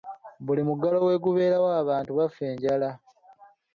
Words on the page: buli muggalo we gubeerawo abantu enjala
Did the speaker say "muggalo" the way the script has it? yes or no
yes